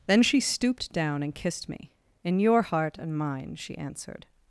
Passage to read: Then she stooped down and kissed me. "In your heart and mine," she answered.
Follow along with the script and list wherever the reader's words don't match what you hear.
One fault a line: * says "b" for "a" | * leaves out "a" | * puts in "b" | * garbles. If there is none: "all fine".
all fine